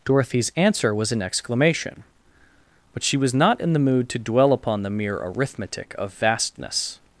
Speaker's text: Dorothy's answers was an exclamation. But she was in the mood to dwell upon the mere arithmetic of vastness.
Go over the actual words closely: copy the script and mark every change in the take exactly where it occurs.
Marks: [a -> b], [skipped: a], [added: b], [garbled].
Dorothy's [answers -> answer] was an exclamation. But she was [added: not] in the mood to dwell upon the mere arithmetic of vastness.